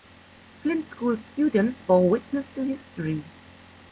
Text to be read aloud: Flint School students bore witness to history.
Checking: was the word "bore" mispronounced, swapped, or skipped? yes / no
no